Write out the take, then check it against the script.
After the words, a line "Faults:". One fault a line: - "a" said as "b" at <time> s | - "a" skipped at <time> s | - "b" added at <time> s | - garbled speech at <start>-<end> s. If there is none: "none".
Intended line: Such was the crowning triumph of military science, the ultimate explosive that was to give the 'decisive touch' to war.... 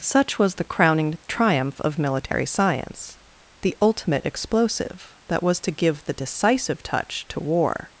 Such was the crowning triumph of military science, the ultimate explosive that was to give the 'decisive touch' to war....
Faults:
none